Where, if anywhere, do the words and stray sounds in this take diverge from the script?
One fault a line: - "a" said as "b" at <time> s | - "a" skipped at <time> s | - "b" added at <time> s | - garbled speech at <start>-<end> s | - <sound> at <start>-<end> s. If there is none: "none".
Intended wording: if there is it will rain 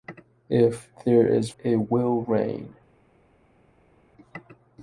none